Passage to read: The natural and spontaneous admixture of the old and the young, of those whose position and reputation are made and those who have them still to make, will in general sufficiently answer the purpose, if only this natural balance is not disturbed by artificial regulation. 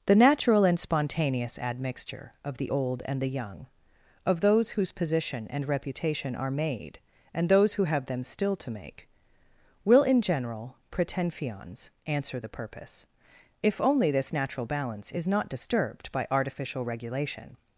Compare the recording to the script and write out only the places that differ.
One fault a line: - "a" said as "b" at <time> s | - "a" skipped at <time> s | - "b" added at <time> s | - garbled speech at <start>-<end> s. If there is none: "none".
- "sufficiently" said as "pretenfions" at 10.9 s